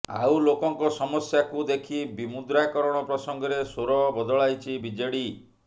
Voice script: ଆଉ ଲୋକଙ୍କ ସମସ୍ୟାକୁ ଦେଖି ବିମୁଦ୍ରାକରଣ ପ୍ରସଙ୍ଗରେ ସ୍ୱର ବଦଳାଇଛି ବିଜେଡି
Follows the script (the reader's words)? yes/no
yes